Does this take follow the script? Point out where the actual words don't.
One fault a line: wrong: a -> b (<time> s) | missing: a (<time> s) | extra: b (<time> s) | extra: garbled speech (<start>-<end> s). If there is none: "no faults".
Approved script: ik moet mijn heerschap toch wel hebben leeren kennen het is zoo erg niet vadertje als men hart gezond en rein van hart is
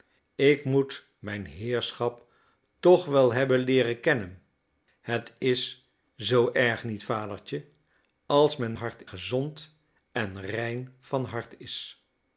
no faults